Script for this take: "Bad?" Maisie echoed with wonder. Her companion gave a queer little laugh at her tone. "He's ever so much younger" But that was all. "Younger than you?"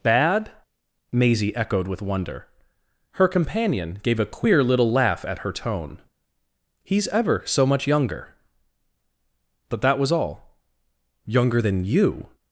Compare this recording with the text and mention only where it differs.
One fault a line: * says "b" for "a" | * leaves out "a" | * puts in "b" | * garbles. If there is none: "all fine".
all fine